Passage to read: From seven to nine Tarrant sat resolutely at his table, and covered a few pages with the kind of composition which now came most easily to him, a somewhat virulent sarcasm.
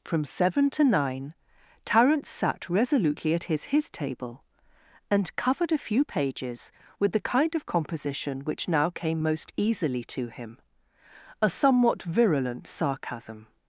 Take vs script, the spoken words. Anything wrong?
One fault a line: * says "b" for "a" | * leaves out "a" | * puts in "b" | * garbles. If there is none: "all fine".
* puts in "his"